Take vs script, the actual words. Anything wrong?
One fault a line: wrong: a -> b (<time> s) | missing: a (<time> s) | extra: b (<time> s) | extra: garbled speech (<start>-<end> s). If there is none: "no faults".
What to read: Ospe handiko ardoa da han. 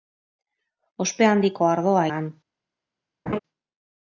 no faults